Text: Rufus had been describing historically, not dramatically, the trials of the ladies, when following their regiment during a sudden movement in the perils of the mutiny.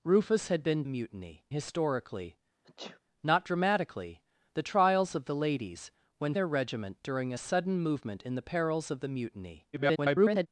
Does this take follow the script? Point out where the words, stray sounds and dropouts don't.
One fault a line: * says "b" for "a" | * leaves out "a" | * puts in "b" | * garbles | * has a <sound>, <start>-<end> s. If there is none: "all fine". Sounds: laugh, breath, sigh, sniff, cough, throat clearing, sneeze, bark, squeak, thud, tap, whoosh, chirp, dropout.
* says "mutiny" for "describing"
* has a sneeze, 2.6-3.0 s
* leaves out "following"
* garbles